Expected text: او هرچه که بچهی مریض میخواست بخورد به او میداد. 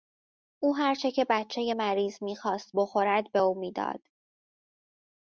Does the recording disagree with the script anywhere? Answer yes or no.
no